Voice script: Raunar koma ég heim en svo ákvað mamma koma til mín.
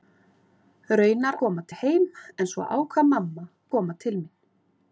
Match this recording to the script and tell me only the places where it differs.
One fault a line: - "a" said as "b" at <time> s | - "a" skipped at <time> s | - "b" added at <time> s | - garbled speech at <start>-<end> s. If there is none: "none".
none